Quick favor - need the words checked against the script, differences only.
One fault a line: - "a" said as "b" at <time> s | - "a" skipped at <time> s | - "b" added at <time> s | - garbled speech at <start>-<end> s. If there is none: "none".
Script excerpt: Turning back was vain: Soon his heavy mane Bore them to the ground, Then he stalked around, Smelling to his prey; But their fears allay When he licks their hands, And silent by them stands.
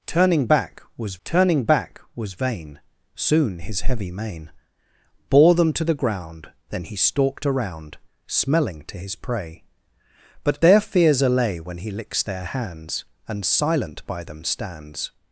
- "turning back was" added at 1.3 s